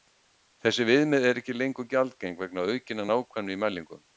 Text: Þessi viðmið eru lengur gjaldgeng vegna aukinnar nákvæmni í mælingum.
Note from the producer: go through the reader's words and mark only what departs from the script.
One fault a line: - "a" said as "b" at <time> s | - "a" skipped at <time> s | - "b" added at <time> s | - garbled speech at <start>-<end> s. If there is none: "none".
- "ekki" added at 1.4 s